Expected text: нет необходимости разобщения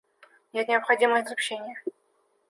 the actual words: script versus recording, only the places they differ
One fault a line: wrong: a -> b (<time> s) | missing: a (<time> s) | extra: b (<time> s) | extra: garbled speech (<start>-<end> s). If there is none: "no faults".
no faults